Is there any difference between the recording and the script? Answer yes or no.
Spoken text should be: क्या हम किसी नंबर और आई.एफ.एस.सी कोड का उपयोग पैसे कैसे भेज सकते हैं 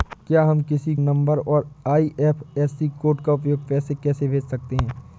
no